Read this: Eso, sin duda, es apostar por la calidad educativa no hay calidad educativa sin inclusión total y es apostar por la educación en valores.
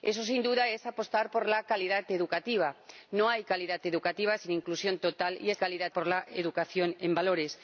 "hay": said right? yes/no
yes